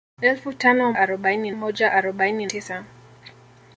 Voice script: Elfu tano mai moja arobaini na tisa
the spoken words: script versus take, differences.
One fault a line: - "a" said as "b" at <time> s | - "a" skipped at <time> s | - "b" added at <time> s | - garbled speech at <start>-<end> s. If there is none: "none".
- "mai" said as "arobaini" at 1.0 s
- "na" skipped at 2.5 s